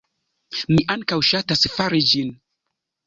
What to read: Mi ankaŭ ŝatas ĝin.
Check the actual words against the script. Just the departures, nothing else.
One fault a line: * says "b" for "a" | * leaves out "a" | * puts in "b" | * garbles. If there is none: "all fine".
* puts in "fari"